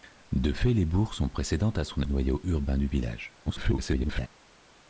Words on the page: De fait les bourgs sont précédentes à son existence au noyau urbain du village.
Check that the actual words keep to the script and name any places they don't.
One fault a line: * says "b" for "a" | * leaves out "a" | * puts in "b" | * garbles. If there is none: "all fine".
* leaves out "existence"
* garbles